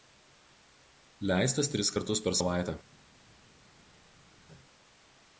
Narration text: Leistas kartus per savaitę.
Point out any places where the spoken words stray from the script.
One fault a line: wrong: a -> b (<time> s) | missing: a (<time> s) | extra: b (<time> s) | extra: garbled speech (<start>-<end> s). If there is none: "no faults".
extra: tris (1.7 s)